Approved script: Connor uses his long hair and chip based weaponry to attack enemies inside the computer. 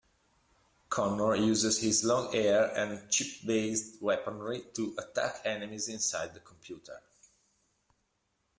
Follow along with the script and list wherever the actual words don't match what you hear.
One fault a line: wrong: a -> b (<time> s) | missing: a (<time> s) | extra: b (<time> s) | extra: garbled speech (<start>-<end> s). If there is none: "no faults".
no faults